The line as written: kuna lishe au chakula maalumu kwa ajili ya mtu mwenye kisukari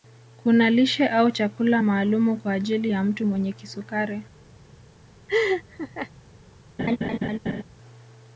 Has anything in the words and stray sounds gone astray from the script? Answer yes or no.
yes